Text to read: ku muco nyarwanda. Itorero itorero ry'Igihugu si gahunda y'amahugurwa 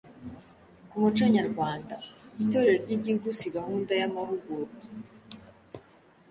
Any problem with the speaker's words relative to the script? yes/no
yes